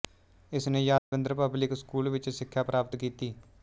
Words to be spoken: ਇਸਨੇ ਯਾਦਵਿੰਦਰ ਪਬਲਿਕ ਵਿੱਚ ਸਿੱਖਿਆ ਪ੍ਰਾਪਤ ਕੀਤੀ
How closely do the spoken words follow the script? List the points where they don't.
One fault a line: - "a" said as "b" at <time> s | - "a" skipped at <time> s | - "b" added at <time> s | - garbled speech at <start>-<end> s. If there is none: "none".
- "ਸਕੂਲ" added at 1.8 s